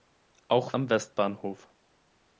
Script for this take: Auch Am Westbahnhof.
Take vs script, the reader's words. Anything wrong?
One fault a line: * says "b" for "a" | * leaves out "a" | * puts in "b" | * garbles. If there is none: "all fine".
all fine